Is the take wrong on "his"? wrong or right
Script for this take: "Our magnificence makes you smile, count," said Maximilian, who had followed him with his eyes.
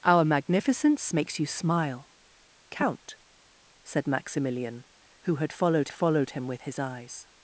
right